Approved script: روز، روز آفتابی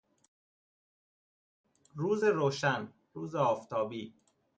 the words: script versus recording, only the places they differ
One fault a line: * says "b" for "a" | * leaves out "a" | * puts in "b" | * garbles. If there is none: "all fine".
* puts in "روشن"